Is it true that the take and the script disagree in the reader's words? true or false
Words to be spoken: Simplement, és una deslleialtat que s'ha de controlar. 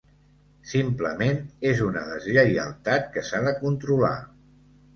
false